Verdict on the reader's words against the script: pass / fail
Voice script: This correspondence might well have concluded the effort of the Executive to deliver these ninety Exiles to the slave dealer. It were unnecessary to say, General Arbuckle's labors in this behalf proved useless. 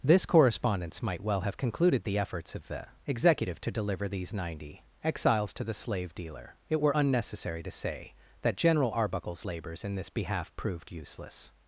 fail